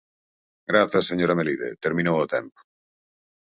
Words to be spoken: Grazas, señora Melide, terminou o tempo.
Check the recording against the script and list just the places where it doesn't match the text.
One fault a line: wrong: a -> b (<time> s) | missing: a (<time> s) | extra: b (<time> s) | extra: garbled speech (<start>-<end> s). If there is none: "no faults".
no faults